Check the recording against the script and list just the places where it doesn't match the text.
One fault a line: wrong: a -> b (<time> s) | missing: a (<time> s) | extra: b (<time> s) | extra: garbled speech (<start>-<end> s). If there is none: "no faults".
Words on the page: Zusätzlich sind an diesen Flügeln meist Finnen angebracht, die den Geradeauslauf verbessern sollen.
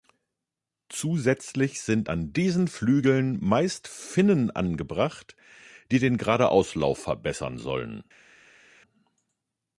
no faults